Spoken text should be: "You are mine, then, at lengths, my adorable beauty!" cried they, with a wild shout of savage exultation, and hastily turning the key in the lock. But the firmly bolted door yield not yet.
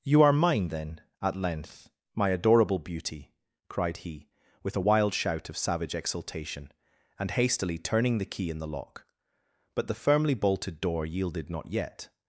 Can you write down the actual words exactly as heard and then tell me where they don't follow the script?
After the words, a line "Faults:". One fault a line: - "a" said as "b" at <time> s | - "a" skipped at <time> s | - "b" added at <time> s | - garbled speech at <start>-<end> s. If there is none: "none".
"You are mine, then, at length, my adorable beauty!" cried he, with a wild shout of savage exultation, and hastily turning the key in the lock. But the firmly bolted door yielded not yet.
Faults:
- "lengths" said as "length" at 1.4 s
- "they" said as "he" at 4.0 s
- "yield" said as "yielded" at 11.1 s